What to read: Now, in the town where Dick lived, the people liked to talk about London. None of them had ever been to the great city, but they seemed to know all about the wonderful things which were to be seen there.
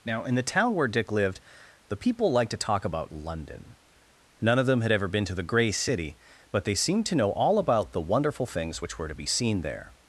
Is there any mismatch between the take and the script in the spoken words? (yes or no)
yes